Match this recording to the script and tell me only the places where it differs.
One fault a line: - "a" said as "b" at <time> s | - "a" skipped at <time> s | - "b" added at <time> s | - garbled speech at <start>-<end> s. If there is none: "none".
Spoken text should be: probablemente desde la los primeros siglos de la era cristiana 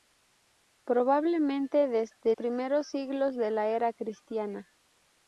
- "la los" skipped at 2.3 s